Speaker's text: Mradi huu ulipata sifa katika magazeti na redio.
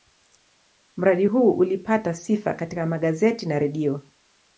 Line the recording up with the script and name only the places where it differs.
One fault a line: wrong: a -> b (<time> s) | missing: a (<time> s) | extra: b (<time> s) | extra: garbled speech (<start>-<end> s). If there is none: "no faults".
no faults